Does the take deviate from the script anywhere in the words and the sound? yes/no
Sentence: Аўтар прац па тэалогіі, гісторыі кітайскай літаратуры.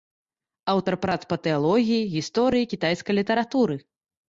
no